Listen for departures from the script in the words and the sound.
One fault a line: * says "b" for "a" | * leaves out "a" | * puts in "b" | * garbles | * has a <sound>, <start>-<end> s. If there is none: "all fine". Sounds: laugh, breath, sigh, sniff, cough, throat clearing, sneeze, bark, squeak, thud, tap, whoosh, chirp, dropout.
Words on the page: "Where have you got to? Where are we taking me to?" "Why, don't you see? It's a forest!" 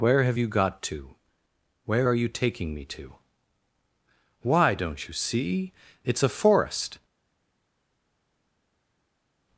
* says "you" for "we"